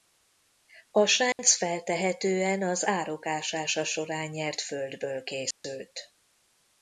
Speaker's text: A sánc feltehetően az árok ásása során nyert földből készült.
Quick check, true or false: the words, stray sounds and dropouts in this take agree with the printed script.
false